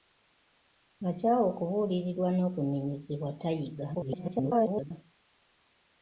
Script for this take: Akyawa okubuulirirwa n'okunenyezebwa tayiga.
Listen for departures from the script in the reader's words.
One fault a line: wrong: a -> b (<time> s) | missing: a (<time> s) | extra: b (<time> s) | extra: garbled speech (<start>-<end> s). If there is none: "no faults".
extra: garbled speech (3.9-4.9 s)